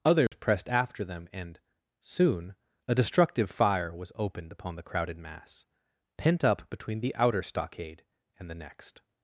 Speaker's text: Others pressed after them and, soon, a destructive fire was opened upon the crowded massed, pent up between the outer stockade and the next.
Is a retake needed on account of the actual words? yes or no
yes